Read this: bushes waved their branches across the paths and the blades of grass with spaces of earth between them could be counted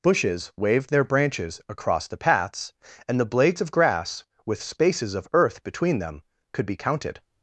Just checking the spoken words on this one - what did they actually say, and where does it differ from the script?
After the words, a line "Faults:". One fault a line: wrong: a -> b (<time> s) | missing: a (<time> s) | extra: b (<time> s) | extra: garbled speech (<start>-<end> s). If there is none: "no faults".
bushes waved their branches across the paths and the blades of grass with spaces of earth between them could be counted
Faults:
no faults